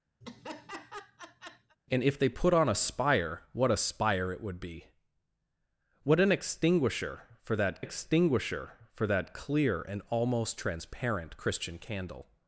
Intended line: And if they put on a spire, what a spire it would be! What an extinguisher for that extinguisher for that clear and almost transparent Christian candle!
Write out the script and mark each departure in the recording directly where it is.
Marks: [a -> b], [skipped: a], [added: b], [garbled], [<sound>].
[laugh] And if they put on a spire, what a spire it would be! What an extinguisher for that extinguisher for that clear and almost transparent Christian candle!